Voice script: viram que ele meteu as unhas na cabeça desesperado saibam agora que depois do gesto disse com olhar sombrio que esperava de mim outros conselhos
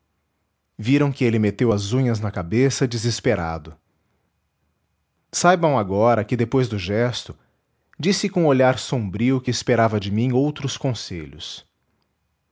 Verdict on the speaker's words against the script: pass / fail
pass